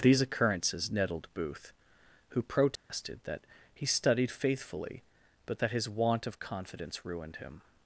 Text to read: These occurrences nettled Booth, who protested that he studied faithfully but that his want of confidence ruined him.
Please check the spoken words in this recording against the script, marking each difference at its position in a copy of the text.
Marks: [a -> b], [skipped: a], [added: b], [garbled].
These occurrences nettled Booth, who protested that he studied faithfully but that his want of confidence ruined him.